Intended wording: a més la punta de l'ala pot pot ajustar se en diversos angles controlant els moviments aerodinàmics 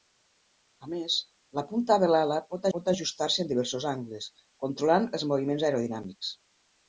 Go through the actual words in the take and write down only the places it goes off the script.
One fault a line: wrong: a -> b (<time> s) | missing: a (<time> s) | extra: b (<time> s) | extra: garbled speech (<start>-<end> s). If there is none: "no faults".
no faults